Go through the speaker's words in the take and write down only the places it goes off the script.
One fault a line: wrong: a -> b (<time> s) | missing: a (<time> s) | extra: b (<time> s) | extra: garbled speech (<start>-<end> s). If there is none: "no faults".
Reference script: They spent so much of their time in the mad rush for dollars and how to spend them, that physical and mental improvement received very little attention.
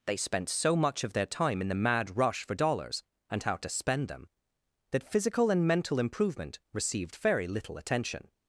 no faults